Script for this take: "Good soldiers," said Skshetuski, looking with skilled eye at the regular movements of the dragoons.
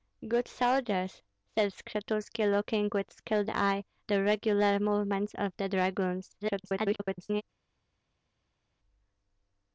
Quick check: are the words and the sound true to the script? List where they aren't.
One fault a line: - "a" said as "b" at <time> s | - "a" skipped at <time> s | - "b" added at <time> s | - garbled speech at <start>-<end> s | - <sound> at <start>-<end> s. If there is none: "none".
- "at" skipped at 3.8 s
- garbled speech at 6.4-7.4 s